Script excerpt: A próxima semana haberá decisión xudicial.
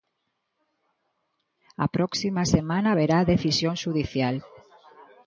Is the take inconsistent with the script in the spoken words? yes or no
no